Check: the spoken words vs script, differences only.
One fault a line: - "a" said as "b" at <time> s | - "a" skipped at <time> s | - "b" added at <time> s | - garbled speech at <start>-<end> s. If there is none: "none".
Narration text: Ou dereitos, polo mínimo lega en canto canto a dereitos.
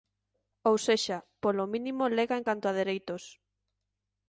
- "dereitos" said as "sexa" at 0.9 s
- "canto" skipped at 2.6 s